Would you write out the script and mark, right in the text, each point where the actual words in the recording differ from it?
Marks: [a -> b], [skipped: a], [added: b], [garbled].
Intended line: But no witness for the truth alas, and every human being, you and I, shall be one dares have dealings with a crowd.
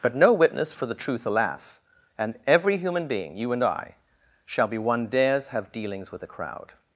But no witness for the truth alas, and every human being, you and I, shall be one dares have dealings with a crowd.